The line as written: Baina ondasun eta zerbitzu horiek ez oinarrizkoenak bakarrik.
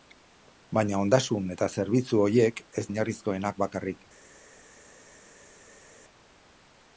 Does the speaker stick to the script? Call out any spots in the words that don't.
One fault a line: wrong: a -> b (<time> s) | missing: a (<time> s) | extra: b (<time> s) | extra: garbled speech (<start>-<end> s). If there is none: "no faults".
no faults